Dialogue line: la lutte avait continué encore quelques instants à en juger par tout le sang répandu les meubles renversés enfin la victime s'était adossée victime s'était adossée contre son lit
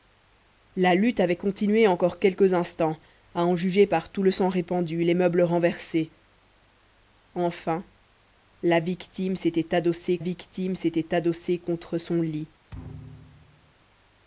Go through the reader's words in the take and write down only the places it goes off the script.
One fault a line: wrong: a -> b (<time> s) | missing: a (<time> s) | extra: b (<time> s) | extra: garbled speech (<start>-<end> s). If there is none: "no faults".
no faults